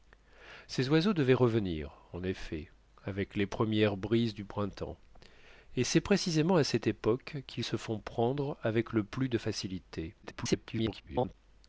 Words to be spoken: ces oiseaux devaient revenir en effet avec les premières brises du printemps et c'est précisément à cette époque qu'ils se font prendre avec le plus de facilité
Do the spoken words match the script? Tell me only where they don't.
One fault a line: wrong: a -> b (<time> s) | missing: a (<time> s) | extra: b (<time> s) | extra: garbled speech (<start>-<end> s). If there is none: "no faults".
extra: garbled speech (10.2-11.3 s)